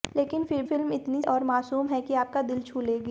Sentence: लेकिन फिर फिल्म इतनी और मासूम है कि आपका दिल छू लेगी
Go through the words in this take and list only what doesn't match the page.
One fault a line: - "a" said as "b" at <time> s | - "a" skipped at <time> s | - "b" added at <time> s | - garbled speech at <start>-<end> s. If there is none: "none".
none